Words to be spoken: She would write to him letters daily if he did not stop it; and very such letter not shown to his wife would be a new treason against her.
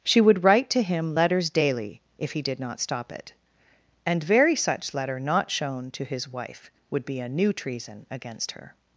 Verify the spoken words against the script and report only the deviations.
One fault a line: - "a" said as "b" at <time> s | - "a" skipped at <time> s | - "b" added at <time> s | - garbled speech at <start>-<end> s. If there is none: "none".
none